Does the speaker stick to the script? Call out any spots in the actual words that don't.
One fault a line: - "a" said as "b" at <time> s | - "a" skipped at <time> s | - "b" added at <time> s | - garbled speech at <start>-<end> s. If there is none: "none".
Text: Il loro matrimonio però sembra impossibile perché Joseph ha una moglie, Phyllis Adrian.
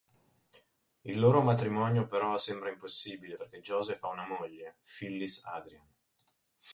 none